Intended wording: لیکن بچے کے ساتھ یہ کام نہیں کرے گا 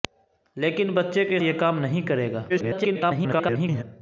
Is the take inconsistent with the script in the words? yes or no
yes